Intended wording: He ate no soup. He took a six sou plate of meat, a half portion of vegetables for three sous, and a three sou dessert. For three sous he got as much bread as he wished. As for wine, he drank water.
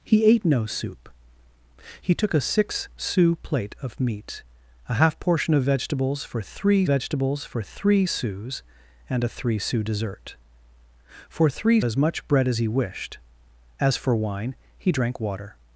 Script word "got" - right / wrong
wrong